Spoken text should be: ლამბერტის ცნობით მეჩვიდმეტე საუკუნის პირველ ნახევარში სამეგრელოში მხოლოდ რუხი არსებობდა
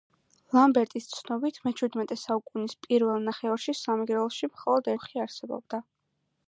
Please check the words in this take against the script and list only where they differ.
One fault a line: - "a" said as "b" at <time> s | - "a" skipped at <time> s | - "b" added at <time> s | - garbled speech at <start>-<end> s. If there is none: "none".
none